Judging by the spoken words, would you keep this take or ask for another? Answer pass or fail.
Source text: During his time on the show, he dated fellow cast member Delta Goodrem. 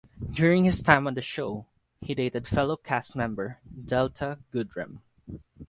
pass